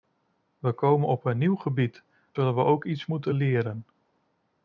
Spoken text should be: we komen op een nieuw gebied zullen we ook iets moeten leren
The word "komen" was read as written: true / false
true